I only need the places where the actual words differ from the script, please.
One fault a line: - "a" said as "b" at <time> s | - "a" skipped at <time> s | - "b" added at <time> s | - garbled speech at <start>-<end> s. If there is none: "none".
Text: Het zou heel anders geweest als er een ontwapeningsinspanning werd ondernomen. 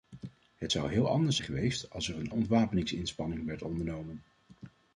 none